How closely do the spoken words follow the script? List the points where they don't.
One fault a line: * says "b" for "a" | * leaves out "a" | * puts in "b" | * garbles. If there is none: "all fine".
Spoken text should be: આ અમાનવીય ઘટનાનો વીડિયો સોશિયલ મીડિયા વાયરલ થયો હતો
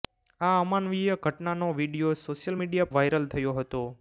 all fine